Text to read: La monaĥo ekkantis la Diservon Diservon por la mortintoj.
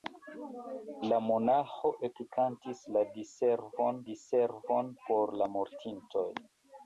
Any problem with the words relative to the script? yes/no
no